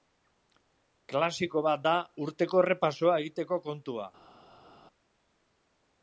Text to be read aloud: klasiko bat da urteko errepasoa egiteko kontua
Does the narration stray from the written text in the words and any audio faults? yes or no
no